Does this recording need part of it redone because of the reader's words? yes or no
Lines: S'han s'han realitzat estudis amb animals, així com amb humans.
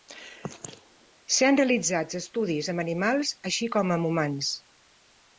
yes